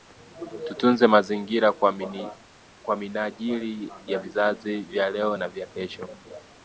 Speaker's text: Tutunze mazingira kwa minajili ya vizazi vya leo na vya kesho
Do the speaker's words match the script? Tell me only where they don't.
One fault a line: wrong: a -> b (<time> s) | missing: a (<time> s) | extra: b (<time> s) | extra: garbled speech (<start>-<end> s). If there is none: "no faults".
no faults